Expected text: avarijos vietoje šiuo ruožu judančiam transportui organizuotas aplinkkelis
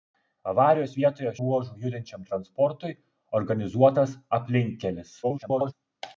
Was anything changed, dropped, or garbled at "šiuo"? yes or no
yes